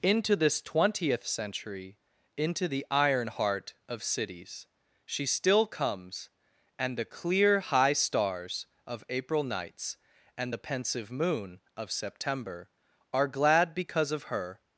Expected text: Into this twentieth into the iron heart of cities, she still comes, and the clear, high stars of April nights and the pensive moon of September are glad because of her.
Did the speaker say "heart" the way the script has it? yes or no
yes